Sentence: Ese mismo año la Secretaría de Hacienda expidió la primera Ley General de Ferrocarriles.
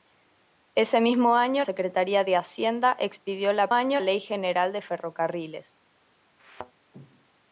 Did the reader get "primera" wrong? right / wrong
wrong